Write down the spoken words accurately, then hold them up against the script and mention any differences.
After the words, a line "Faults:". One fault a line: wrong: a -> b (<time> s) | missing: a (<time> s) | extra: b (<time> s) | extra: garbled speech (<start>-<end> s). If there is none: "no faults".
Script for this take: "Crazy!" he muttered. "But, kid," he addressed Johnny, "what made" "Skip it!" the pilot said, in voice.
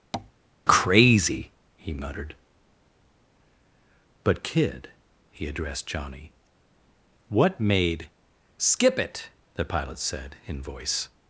"Crazy!" he muttered. "But, kid," he addressed Johnny, "what made" "Skip it!" the pilot said, in voice.
Faults:
no faults